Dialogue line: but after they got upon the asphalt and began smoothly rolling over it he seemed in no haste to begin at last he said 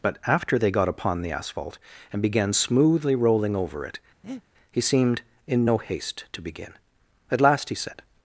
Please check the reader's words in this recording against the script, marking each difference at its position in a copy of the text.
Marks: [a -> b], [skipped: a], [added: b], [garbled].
but after they got upon the asphalt and began smoothly rolling over it he seemed in no haste to begin at last he said